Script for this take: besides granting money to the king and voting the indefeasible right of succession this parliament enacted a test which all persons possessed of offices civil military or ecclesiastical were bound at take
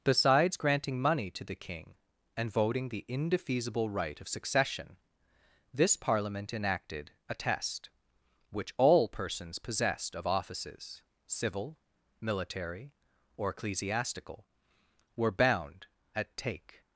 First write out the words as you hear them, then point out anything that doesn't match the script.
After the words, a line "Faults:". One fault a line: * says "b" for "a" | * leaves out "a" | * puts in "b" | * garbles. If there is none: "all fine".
besides granting money to the king and voting the indefeasible right of succession this parliament enacted a test which all persons possessed of offices civil military or ecclesiastical were bound at take
Faults:
all fine